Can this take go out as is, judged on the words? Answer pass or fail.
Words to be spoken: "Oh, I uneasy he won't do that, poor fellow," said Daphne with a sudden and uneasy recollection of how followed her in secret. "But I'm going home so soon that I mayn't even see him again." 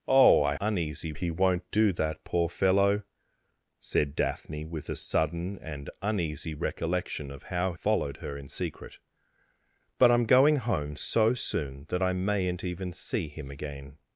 pass